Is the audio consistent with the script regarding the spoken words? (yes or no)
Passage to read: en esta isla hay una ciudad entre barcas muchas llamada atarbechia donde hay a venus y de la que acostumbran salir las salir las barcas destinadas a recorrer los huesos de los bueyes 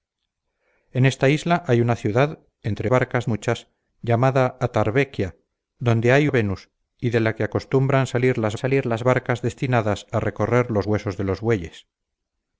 yes